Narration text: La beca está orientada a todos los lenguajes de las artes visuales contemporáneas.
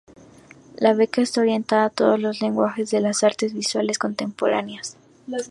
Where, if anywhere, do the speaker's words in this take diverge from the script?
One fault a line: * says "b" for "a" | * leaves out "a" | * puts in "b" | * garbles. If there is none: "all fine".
all fine